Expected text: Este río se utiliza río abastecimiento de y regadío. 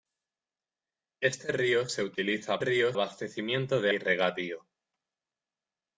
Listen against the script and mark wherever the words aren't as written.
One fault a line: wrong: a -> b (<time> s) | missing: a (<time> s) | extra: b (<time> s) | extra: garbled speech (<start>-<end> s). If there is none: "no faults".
no faults